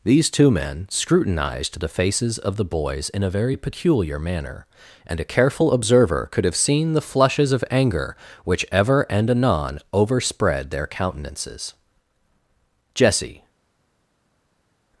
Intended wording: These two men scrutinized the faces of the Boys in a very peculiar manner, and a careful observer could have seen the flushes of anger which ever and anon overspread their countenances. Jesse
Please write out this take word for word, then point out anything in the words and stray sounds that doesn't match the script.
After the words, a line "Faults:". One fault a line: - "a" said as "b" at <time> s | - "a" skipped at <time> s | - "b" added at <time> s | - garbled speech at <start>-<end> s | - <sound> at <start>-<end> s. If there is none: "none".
These two men scrutinized the faces of the Boys in a very peculiar manner, and a careful observer could have seen the flushes of anger which ever and anon overspread their countenances. Jesse
Faults:
none